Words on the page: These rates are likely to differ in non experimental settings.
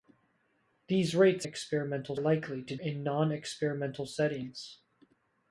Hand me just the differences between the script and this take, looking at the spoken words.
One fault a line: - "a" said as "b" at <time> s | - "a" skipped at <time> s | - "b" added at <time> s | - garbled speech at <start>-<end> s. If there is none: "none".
- "are" said as "experimental" at 1.4 s
- "differ" skipped at 2.8 s